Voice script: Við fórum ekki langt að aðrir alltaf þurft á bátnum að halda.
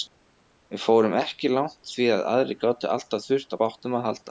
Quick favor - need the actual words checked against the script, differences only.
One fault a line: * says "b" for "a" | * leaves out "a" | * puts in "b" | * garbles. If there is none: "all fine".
* puts in "því"
* puts in "gátu"